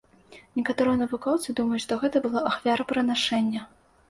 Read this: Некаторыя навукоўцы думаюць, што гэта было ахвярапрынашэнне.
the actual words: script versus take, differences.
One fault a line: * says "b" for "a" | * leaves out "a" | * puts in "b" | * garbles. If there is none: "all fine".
all fine